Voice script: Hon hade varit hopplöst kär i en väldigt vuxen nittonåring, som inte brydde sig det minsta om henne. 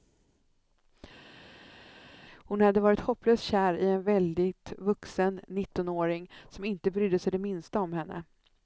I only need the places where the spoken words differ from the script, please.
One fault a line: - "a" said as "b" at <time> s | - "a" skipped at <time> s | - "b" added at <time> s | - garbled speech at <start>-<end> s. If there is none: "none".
none